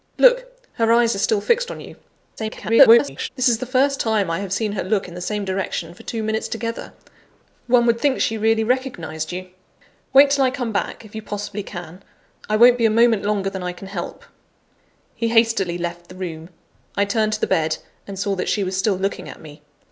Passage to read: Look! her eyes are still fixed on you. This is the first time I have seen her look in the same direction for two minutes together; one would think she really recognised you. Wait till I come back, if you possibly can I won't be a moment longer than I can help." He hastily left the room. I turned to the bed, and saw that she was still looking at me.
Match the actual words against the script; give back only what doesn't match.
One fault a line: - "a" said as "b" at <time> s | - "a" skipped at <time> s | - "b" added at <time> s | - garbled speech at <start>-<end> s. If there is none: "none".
- garbled speech at 2.4-3.3 s